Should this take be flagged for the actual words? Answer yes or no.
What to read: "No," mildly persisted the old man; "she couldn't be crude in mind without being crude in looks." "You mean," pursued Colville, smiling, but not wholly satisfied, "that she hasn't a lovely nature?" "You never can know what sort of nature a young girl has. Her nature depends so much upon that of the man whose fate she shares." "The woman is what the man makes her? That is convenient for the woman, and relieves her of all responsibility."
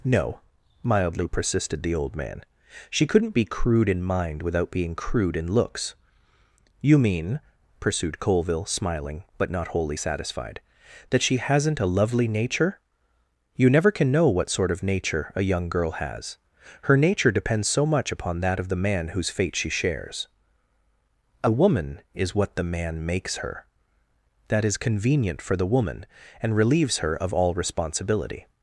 yes